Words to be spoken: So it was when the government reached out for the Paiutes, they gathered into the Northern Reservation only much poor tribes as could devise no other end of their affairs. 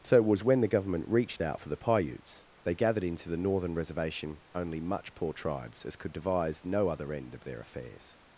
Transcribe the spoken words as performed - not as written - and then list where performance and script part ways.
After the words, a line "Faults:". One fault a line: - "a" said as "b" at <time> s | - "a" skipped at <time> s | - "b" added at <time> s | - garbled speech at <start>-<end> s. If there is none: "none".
So it was when the government reached out for the Paiutes, they gathered into the Northern Reservation only much poor tribes as could devise no other end of their affairs.
Faults:
none